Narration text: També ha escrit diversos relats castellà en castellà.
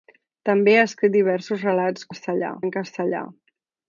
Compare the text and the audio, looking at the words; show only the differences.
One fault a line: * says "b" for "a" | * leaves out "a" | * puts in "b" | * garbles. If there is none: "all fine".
all fine